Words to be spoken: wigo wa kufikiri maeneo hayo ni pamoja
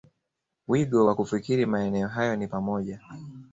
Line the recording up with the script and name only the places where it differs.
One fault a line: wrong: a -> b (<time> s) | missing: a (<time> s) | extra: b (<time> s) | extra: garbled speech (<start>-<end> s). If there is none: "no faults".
no faults